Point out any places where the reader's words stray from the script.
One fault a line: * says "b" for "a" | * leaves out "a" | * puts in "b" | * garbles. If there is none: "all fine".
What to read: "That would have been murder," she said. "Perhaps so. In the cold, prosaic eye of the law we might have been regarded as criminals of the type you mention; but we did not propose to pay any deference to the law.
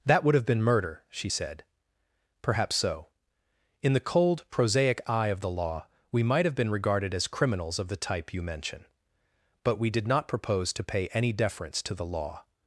all fine